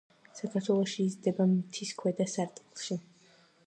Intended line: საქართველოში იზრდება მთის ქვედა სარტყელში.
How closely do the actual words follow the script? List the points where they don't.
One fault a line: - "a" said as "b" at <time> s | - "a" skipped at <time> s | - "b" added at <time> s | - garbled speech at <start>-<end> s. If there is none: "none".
none